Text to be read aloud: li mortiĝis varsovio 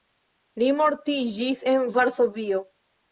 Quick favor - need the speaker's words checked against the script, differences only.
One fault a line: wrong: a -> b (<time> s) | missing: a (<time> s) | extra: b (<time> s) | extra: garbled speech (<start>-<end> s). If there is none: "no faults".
extra: en (1.7 s)